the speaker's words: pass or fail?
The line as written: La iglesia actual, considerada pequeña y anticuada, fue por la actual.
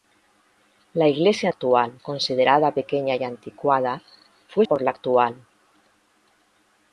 pass